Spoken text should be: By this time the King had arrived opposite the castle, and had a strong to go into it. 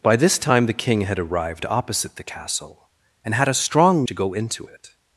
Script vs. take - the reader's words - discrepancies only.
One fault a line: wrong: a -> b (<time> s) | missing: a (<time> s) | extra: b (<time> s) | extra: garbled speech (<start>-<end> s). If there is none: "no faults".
no faults